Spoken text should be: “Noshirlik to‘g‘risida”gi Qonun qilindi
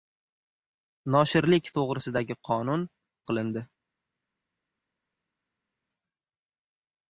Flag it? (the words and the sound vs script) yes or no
no